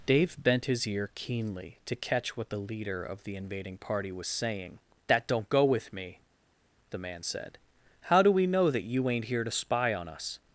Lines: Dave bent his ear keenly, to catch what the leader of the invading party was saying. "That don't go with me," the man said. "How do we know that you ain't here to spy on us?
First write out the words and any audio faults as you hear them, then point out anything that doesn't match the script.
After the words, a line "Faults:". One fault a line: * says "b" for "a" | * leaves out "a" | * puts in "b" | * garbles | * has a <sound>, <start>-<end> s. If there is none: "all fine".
Dave bent his ear keenly, to catch what the leader of the invading party was saying. "That don't go with me," the man said. "How do we know that you ain't here to spy on us?
Faults:
all fine